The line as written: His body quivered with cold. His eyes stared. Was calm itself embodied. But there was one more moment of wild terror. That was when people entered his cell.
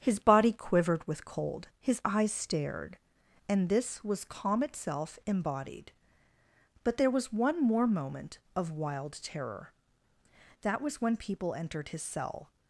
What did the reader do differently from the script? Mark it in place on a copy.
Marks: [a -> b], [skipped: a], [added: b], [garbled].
His body quivered with cold. His eyes stared. [added: And this] Was calm itself embodied. But there was one more moment of wild terror. That was when people entered his cell.